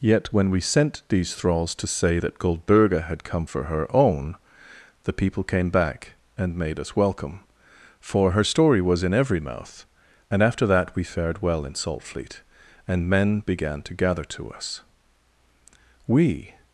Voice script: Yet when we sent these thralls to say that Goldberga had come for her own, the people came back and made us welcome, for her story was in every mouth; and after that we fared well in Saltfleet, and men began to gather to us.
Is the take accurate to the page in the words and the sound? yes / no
no